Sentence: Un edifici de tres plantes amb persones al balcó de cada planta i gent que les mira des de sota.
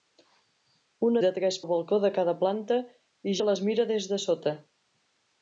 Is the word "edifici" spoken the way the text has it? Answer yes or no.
no